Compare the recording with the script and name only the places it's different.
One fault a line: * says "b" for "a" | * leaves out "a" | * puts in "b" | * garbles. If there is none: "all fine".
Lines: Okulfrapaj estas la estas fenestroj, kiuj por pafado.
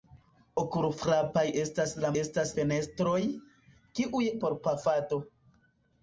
all fine